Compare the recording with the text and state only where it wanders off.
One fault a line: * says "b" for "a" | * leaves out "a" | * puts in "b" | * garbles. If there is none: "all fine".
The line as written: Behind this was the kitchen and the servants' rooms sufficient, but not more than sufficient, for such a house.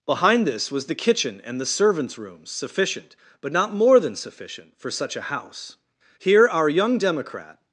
* puts in "Here our young democrat"